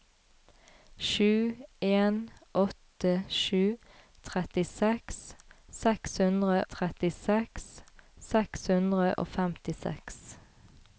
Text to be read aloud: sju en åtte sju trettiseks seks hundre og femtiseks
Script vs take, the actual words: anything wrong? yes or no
yes